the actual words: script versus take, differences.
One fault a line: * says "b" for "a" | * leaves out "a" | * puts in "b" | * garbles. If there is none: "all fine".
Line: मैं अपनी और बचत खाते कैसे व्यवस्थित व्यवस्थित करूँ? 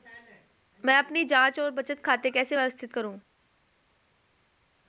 * puts in "जांच"
* leaves out "व्यवस्थित"